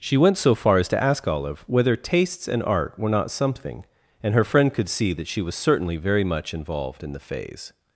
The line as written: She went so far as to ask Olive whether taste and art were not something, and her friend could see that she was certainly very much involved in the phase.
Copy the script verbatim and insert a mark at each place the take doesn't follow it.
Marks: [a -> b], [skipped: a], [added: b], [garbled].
She went so far as to ask Olive whether [taste -> tastes] and art were not something, and her friend could see that she was certainly very much involved in the phase.